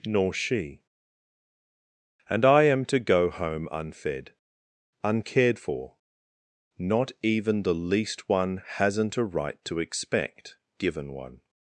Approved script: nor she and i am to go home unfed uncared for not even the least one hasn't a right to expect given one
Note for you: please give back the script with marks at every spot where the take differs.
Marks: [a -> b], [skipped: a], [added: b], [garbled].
nor she and i am to go home unfed uncared for not even the least one hasn't a right to expect given one